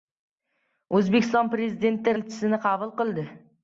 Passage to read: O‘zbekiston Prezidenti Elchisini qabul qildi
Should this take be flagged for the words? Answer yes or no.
no